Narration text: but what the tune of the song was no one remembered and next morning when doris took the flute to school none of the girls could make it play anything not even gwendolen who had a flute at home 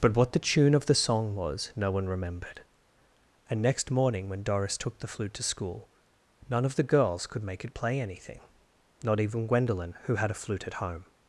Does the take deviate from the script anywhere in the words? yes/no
no